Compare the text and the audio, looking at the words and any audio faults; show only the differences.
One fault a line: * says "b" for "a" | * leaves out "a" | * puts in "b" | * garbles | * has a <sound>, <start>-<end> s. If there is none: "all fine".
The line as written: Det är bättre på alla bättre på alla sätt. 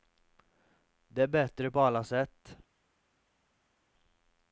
* leaves out "bättre på alla"